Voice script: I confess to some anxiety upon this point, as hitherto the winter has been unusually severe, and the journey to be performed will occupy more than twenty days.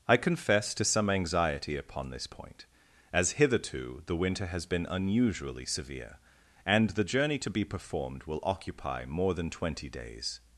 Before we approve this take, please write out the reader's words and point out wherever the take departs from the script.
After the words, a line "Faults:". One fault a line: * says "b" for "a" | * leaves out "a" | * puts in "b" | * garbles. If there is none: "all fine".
I confess to some anxiety upon this point, as hitherto the winter has been unusually severe, and the journey to be performed will occupy more than twenty days.
Faults:
all fine